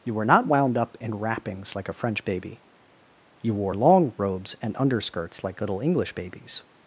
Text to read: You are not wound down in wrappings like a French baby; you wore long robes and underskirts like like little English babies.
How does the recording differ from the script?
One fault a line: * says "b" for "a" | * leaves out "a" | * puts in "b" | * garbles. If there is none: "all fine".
* says "were" for "are"
* says "up" for "down"
* leaves out "like"